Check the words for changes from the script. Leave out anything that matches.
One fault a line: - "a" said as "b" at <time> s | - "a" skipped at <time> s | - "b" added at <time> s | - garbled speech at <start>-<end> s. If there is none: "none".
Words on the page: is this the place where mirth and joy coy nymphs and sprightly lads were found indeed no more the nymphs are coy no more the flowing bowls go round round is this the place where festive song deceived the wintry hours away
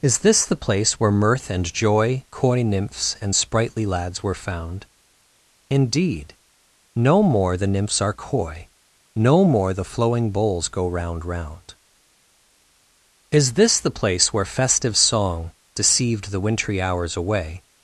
none